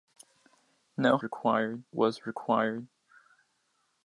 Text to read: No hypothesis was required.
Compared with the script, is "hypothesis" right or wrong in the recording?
wrong